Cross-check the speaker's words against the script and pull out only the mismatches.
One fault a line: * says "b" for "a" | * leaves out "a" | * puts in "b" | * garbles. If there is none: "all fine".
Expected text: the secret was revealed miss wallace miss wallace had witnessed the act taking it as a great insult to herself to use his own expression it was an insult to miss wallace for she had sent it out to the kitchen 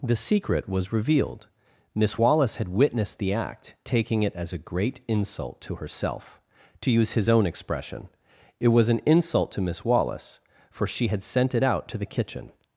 * leaves out "miss wallace"